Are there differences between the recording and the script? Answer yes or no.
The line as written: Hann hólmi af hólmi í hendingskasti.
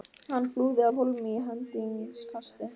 yes